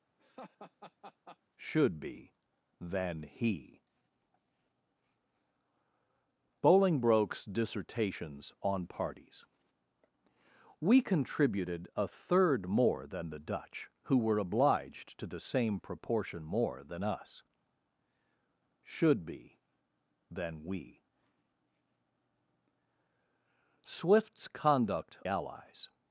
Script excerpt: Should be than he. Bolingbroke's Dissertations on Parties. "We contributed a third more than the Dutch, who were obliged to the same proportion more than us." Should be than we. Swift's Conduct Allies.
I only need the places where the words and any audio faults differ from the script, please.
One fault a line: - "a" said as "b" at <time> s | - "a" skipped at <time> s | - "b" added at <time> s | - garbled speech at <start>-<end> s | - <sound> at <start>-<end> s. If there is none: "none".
- laugh at 0.2-1.4 s